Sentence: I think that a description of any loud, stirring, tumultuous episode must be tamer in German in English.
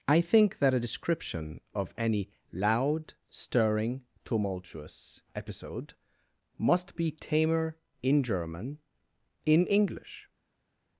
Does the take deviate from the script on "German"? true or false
false